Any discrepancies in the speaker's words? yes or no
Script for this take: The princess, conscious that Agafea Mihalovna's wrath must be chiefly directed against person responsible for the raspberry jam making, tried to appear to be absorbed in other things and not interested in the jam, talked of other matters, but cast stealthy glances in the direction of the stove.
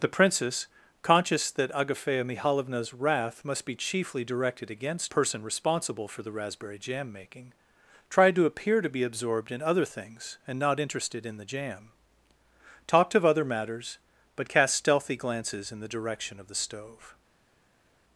no